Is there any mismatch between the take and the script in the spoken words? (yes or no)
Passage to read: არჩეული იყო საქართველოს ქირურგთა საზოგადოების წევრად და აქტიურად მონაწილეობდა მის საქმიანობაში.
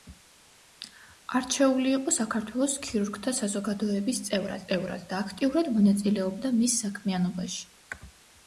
yes